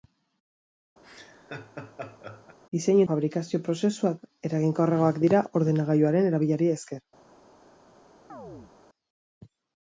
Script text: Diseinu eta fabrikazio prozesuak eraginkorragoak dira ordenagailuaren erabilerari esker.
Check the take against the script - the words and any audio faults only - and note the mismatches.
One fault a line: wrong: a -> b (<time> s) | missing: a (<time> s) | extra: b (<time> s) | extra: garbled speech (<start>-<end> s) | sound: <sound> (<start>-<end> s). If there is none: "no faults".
sound: laugh (1.0-2.6 s)
missing: eta (3.0 s)
sound: chirp (8.3-8.7 s)